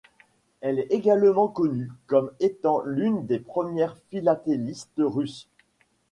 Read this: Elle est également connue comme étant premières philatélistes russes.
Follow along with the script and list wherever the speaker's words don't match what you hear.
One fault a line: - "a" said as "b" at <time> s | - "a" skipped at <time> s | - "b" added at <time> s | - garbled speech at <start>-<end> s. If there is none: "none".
- "l'une des" added at 2.8 s